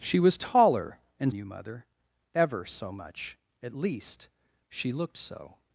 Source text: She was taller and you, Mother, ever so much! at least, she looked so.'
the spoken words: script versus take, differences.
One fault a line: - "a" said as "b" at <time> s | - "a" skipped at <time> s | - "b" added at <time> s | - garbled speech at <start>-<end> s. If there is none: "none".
none